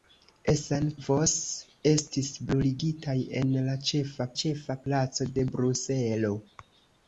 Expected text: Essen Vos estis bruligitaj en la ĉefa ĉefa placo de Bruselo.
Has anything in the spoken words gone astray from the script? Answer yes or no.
no